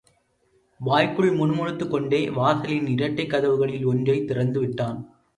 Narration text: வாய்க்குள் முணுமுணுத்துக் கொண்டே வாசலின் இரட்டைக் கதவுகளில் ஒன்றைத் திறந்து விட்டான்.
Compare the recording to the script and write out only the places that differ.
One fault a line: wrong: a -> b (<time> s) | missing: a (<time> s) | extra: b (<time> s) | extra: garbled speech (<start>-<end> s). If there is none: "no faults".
no faults